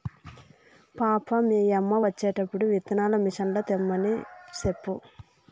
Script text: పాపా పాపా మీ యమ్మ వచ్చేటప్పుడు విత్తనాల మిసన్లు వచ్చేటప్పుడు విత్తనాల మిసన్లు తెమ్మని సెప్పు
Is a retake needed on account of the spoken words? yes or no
yes